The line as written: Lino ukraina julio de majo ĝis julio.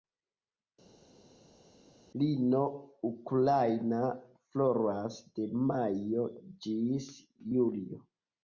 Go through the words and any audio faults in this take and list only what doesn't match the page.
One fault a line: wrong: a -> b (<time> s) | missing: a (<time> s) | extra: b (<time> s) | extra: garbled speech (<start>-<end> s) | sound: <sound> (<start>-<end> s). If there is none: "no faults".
wrong: julio -> floras (4.5 s)